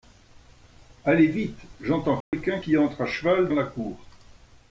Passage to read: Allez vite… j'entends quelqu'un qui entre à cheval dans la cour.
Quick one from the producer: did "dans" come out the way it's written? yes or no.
no